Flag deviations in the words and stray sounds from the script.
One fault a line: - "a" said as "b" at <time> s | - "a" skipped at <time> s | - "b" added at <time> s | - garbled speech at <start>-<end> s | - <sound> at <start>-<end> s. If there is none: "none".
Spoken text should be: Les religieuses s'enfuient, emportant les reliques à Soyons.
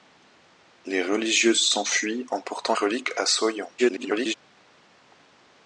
- "les" skipped at 2.8 s
- garbled speech at 3.8-4.3 s